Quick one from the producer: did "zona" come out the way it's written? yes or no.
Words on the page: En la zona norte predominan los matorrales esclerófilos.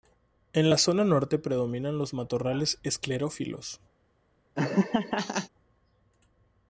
yes